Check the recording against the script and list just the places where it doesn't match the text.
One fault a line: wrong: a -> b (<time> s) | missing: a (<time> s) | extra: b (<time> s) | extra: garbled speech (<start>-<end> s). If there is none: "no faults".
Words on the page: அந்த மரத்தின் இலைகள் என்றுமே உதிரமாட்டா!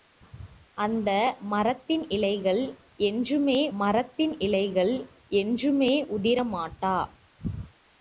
extra: மரத்தின் இலைகள் என்றுமே (3.8 s)